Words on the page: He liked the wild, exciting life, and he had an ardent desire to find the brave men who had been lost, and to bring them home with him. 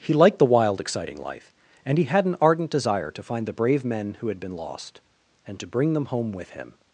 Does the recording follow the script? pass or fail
pass